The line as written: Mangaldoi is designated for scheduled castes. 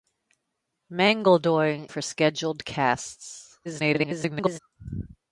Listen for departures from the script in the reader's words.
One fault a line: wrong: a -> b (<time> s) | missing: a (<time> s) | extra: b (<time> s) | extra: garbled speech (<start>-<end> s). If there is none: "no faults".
missing: is designated (1.9 s)
extra: garbled speech (3.6-4.6 s)